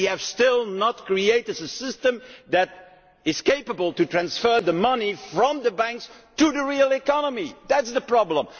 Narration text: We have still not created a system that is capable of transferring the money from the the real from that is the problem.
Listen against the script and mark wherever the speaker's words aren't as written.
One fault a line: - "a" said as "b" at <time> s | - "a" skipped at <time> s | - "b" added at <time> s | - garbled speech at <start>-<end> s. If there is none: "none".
- "banks to" added at 5.7 s
- "from" said as "economy" at 6.9 s